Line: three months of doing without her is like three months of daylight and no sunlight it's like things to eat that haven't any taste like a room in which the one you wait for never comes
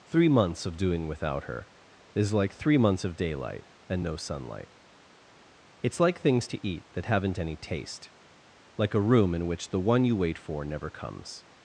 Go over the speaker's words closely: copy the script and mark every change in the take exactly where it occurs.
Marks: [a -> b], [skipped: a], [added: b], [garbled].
three months of doing without her is like three months of daylight and no sunlight it's like things to eat that haven't any taste like a room in which the one you wait for never comes